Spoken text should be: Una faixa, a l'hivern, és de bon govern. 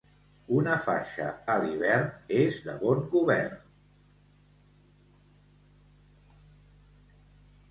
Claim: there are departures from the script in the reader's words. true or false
false